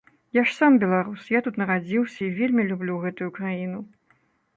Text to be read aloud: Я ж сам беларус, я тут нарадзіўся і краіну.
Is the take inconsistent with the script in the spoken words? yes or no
yes